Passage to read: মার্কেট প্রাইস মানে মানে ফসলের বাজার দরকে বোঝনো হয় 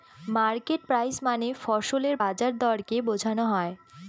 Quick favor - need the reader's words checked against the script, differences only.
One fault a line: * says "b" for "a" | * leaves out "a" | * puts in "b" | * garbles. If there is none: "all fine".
* leaves out "মানে"